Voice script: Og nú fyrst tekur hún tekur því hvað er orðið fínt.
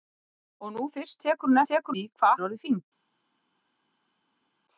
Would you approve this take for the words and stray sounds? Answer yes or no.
yes